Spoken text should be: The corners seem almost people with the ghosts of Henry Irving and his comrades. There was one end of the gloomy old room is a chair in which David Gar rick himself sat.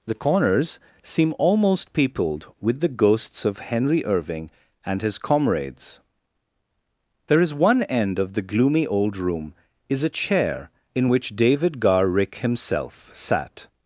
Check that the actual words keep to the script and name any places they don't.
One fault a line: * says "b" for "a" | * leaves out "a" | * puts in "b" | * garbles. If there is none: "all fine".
* says "peopled" for "people"
* says "is" for "was"